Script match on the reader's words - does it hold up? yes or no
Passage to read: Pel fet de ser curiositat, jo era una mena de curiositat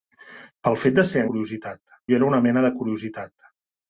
yes